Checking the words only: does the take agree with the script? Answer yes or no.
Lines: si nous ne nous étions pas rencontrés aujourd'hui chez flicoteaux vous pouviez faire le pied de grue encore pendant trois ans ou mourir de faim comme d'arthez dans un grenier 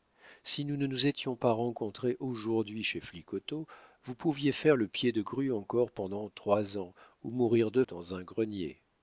no